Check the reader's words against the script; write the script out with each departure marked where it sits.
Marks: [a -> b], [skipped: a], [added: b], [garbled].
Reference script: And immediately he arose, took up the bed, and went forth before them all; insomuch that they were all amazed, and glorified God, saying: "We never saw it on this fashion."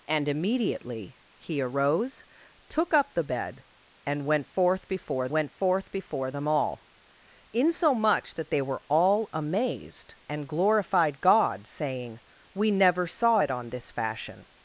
And immediately he arose, took up the bed, and went forth before [added: went forth before] them all; insomuch that they were all amazed, and glorified God, saying: "We never saw it on this fashion."